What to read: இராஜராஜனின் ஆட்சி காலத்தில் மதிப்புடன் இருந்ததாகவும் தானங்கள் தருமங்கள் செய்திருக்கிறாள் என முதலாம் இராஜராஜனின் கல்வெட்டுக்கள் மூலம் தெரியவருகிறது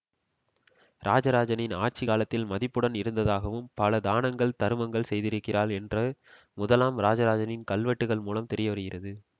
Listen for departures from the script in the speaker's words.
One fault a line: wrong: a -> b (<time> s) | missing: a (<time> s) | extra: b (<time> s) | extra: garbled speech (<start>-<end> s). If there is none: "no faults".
extra: பல (3.7 s)
wrong: என -> என்று (5.8 s)